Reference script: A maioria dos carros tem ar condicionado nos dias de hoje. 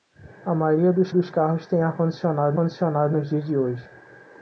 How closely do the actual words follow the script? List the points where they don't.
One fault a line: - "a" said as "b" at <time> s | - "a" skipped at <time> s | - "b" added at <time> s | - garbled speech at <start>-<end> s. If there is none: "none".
- "dos" added at 1.1 s
- "condicionado" added at 2.5 s